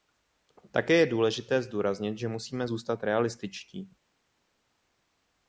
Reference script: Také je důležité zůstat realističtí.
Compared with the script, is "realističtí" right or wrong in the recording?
right